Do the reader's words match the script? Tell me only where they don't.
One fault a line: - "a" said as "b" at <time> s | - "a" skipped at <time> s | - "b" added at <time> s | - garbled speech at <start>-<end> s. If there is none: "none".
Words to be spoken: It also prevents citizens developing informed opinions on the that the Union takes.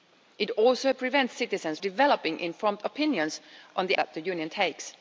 none